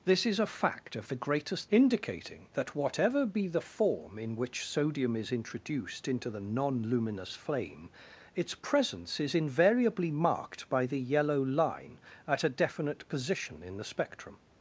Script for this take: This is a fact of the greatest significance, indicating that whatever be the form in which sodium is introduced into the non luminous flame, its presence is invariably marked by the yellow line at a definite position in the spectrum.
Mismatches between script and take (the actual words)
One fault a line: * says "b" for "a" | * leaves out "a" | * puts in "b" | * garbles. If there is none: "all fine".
* leaves out "significance"